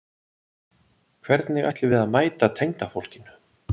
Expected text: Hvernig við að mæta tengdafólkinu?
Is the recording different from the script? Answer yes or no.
yes